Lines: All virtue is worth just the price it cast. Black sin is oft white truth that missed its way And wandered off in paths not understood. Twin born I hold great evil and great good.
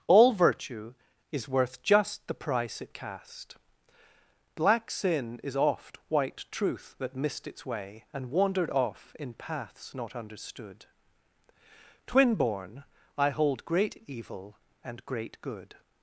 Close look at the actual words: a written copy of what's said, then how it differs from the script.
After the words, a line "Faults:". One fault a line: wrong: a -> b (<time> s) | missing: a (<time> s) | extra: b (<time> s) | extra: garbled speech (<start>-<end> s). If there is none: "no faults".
All virtue is worth just the price it cast. Black sin is oft white truth that missed its way And wandered off in paths not understood. Twin born I hold great evil and great good.
Faults:
no faults